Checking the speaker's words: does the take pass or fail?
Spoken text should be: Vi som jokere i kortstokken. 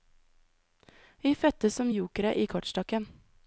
fail